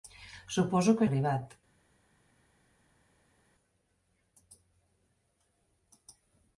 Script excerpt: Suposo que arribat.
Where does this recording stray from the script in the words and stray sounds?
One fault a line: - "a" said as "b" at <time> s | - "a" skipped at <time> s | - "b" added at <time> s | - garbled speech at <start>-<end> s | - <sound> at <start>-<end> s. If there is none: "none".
none